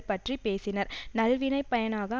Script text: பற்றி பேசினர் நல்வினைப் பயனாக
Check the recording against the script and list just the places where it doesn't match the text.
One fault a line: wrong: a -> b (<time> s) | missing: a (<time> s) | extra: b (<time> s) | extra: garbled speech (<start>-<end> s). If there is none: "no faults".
no faults